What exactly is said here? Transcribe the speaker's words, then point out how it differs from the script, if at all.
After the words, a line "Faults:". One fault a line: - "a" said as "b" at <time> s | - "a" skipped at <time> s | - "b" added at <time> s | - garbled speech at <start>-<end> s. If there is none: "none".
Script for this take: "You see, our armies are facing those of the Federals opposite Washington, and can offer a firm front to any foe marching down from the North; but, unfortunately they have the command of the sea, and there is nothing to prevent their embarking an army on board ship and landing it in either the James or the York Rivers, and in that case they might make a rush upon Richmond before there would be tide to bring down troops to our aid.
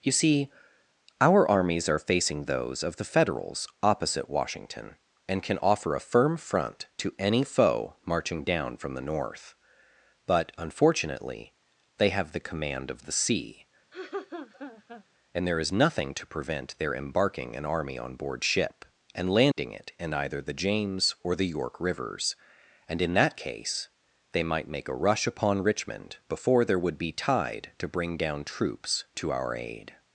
"You see, our armies are facing those of the Federals opposite Washington, and can offer a firm front to any foe marching down from the North; but, unfortunately they have the command of the sea, and there is nothing to prevent their embarking an army on board ship and landing it in either the James or the York Rivers, and in that case they might make a rush upon Richmond before there would be tide to bring down troops to our aid.
Faults:
none